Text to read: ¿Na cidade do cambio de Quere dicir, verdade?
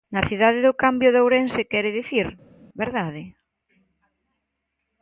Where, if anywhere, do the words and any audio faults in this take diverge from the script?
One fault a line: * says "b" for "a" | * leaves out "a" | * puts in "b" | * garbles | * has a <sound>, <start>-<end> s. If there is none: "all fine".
* puts in "Ourense"